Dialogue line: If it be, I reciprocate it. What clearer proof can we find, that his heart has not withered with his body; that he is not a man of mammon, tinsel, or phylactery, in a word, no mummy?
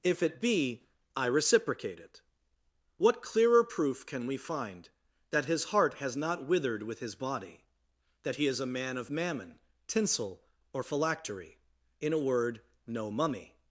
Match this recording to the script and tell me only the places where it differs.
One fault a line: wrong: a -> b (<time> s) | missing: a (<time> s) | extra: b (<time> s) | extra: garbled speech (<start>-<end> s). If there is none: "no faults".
missing: not (8.6 s)